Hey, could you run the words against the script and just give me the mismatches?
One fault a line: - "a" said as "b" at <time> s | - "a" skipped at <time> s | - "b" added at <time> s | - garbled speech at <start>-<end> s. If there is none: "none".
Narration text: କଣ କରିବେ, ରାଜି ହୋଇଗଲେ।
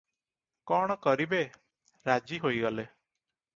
none